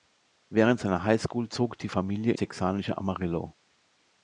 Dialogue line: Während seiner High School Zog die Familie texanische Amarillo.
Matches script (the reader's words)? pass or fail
pass